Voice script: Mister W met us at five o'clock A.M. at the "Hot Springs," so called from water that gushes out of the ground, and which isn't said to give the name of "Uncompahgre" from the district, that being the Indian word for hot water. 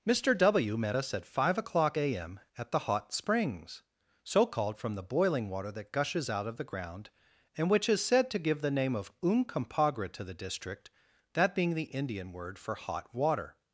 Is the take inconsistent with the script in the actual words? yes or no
yes